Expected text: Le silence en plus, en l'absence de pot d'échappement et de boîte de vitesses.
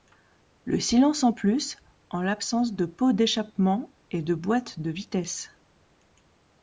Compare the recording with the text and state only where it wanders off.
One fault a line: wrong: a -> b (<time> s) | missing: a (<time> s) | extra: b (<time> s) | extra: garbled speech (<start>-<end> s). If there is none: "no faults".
no faults